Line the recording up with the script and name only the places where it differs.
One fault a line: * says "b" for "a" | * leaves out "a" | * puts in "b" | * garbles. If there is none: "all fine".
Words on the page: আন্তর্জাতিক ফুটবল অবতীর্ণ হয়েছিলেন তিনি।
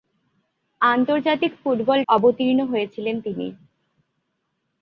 all fine